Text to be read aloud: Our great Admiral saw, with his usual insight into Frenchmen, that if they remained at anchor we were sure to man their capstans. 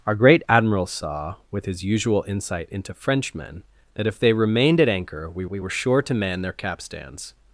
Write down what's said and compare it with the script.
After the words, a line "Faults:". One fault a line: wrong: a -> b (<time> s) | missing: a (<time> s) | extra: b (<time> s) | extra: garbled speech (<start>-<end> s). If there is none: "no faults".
Our great Admiral saw, with his usual insight into Frenchmen, that if they remained at anchor we we were sure to man their capstans.
Faults:
extra: we (5.4 s)